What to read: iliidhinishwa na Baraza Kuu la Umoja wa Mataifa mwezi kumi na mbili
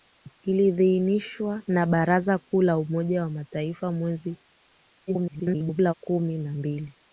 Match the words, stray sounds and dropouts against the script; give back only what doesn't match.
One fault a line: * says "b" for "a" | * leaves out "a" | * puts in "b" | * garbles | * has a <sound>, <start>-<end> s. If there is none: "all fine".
* garbles